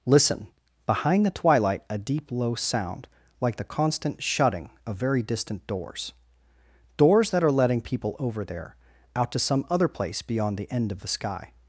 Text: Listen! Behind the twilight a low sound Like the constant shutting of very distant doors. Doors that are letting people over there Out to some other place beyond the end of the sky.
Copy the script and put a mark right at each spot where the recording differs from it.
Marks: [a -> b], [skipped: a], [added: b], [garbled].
Listen! Behind the twilight a [added: deep] low sound Like the constant shutting of very distant doors. Doors that are letting people over there Out to some other place beyond the end of the sky.